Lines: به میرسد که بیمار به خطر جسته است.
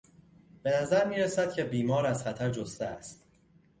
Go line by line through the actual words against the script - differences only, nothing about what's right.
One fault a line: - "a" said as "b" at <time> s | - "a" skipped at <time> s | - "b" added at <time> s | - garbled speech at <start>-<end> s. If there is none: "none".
- "نظر" added at 0.8 s
- "به" said as "از" at 2.0 s